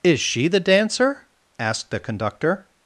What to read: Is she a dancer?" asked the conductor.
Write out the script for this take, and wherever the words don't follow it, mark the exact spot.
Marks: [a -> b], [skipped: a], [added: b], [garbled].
Is she [a -> the] dancer?" asked the conductor.